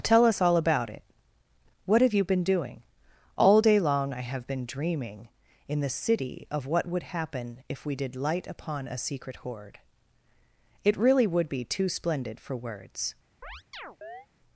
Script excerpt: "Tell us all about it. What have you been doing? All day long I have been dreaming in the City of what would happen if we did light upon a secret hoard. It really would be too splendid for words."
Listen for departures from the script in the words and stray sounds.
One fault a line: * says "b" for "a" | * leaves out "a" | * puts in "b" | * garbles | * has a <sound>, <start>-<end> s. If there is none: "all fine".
* has a chirp, 13.4-14.3 s